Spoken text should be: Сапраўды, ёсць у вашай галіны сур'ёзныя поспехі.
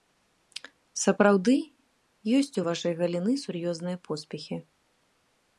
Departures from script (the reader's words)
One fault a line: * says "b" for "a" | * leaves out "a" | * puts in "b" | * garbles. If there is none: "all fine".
all fine